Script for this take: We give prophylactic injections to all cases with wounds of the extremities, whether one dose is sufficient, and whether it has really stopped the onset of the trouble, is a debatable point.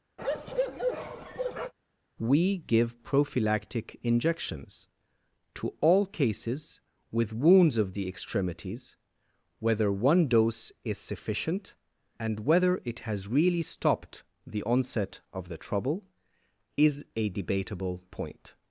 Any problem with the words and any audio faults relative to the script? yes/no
yes